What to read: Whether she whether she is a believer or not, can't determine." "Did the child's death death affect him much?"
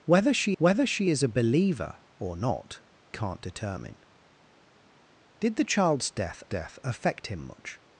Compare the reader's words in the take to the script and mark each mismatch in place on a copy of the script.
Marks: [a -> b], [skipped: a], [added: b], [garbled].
Whether she whether she is a believer or not, can't determine." "Did the child's death death affect him much?"